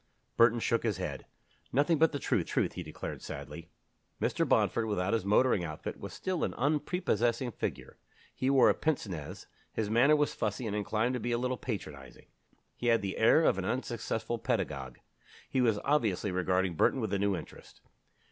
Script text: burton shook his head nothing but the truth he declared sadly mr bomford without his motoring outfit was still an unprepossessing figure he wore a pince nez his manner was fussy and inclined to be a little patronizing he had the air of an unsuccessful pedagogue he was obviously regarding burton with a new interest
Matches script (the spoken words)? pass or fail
fail